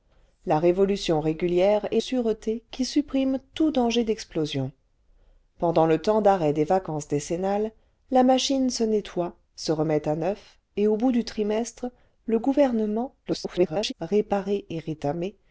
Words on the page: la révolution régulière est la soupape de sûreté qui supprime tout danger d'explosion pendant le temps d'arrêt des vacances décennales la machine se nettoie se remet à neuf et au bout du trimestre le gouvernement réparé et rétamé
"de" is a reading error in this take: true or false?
true